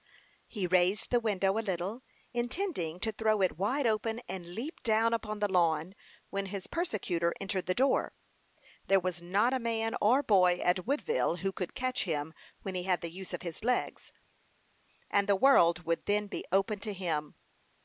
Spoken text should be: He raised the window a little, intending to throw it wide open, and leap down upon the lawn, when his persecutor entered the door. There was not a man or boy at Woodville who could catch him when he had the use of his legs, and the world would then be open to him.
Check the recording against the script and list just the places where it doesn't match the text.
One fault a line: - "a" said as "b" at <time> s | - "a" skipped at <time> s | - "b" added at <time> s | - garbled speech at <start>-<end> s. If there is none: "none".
none